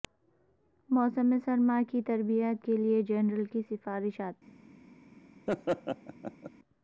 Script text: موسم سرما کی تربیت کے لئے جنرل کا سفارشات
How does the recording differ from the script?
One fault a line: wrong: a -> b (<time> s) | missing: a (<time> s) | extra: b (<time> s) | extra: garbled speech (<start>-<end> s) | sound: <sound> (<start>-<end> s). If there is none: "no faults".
wrong: کا -> کی (3.4 s)
sound: laugh (5.5-6.5 s)